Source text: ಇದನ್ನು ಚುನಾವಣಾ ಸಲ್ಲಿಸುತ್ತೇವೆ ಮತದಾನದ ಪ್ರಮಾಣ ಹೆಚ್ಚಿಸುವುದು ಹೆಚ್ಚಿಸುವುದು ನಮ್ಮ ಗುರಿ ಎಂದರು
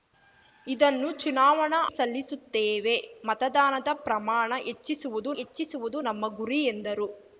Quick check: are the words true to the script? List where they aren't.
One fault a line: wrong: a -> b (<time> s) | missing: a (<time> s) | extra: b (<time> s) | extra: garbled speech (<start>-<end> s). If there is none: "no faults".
no faults